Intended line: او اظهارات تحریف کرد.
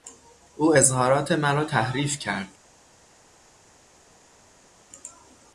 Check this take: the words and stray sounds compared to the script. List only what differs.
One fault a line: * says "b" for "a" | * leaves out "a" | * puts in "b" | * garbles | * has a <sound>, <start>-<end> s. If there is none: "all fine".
* puts in "مرا"